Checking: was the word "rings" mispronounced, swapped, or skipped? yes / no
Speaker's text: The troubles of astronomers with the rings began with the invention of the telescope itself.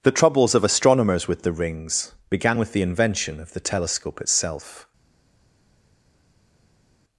no